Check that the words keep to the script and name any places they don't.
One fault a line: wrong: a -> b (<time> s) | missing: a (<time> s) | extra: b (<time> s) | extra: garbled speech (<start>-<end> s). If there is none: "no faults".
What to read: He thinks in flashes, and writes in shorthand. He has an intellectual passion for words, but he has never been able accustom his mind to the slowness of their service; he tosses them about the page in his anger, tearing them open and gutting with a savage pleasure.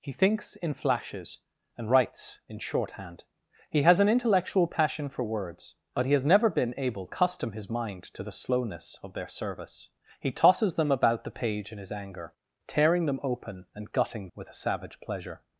no faults